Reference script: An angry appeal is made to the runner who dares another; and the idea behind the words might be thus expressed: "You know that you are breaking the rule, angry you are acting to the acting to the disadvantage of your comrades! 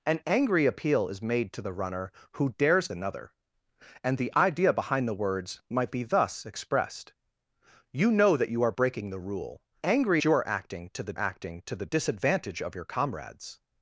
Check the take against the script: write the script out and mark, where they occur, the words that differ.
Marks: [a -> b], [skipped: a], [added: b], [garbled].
An angry appeal is made to the runner who dares another; and the idea behind the words might be thus expressed: "You know that you are breaking the rule, angry you are acting to the acting to the disadvantage of your comrades!